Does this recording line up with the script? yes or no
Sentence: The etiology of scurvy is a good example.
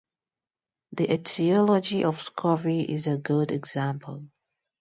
yes